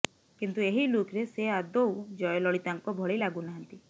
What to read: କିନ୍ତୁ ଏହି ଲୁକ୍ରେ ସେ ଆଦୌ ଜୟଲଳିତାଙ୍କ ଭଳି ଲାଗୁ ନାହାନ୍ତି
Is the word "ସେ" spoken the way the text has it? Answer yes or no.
yes